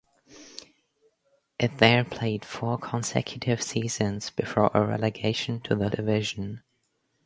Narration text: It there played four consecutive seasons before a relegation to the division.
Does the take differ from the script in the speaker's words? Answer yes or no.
no